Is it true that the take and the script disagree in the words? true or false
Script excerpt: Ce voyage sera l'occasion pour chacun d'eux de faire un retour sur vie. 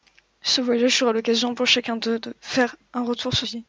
false